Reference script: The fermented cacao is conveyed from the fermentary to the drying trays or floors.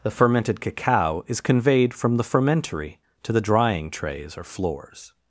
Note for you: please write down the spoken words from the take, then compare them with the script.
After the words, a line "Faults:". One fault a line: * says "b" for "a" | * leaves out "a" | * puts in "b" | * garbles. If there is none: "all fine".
The fermented cacao is conveyed from the fermentary to the drying trays or floors.
Faults:
all fine